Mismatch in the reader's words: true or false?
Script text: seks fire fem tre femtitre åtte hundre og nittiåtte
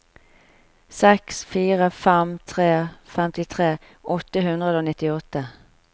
false